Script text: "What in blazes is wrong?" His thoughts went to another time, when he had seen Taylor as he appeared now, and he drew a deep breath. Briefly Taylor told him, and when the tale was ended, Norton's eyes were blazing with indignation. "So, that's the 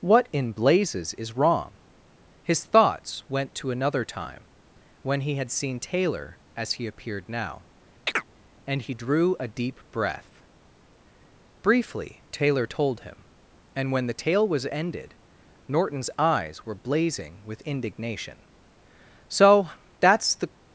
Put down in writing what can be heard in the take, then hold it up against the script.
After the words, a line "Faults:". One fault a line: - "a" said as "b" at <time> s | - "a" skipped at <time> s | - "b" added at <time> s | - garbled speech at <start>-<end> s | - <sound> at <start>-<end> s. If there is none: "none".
"What in blazes is wrong?" His thoughts went to another time, when he had seen Taylor as he appeared now, and he drew a deep breath. Briefly Taylor told him, and when the tale was ended, Norton's eyes were blazing with indignation. "So, that's the
Faults:
- chirp at 8.1-8.3 s